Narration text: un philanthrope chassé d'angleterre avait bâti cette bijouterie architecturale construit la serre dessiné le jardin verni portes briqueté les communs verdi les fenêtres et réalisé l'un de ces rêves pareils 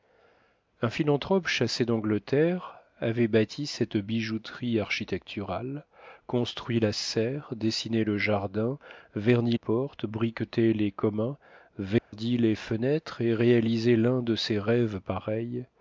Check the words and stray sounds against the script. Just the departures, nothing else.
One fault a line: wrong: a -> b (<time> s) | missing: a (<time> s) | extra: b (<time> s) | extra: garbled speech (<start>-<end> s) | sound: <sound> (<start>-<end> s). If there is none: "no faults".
sound: dropout (12.0-12.1 s)